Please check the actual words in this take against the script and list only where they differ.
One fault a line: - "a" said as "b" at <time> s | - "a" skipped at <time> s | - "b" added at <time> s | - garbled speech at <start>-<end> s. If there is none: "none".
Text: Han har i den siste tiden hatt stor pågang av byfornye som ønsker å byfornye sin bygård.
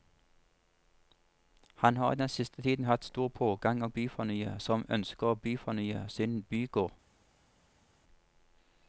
none